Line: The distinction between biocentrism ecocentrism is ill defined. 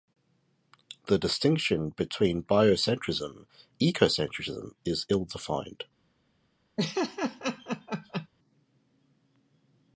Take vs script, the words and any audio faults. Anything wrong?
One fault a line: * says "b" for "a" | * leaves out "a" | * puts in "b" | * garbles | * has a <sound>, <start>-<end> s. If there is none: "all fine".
* has a laugh, 6.8-8.3 s